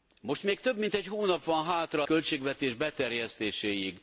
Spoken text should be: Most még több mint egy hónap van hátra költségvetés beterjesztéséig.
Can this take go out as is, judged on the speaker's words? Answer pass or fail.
pass